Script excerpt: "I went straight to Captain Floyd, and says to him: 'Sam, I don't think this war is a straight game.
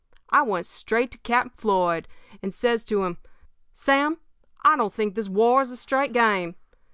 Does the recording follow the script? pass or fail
pass